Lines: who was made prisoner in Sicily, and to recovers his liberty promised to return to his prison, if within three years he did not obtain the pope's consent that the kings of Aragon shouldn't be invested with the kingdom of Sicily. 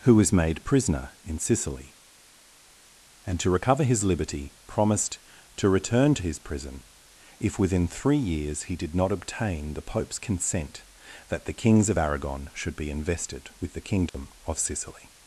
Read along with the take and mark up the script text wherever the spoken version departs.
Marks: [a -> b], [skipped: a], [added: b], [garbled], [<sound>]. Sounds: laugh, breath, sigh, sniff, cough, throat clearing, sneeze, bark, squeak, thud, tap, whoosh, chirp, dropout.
who was made prisoner in Sicily, and to [recovers -> recover] his liberty promised to return to his prison, if within three years he did not obtain the pope's consent that the kings of Aragon [shouldn't -> should] be invested with the kingdom [dropout] of Sicily.